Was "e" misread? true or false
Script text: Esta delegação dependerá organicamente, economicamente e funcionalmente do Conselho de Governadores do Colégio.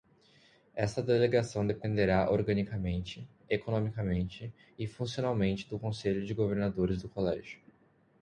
false